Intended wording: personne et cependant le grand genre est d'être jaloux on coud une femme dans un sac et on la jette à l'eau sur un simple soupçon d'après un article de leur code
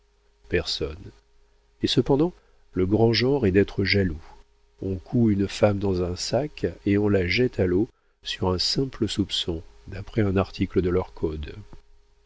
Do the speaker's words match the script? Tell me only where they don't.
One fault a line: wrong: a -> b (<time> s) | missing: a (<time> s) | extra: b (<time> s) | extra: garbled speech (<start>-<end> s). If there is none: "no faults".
no faults